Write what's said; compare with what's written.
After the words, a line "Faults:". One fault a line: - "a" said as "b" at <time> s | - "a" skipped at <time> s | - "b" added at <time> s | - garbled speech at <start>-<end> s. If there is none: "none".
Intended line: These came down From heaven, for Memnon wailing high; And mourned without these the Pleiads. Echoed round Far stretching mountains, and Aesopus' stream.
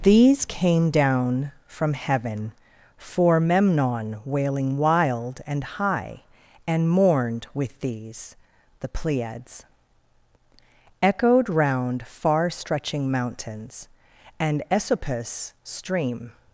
These came down From heaven, for Memnon wailing wild and high; And mourned with these the Pleiads. Echoed round Far stretching mountains, and Aesopus' stream.
Faults:
- "wild and" added at 4.8 s
- "without" said as "with" at 7.5 s